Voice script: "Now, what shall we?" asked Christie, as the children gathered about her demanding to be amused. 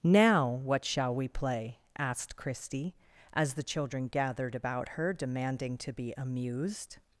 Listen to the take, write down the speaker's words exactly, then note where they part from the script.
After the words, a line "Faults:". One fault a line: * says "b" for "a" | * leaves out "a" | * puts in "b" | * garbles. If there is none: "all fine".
"Now, what shall we play?" asked Christie, as the children gathered about her demanding to be amused.
Faults:
* puts in "play"